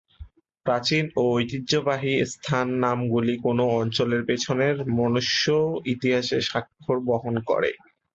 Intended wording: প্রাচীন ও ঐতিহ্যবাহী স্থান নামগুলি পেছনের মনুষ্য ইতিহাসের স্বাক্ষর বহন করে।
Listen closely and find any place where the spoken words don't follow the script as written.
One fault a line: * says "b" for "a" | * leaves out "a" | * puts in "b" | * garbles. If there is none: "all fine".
* puts in "কোন অঞ্চলের"